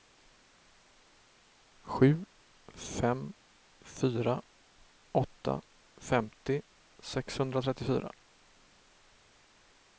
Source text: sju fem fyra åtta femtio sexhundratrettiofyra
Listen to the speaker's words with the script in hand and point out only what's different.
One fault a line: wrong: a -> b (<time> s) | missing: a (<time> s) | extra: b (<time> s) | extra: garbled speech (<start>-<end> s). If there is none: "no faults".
no faults